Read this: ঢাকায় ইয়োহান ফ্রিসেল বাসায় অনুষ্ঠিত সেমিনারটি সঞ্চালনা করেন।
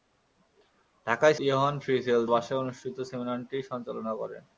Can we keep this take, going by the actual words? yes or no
yes